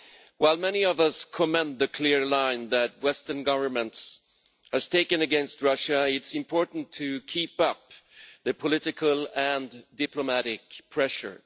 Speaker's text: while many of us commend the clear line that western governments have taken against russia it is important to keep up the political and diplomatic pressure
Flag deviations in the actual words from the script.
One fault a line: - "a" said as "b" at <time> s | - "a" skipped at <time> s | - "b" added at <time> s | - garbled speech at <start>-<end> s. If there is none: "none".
none